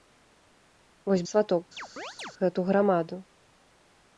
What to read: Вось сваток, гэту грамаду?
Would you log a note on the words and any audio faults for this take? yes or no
yes